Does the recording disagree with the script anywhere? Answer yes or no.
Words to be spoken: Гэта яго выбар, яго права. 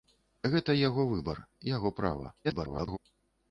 yes